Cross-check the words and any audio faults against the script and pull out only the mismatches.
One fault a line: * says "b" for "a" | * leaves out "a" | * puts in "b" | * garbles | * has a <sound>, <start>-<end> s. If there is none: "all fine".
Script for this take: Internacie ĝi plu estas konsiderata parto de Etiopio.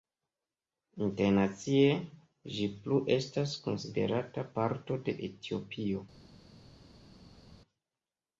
all fine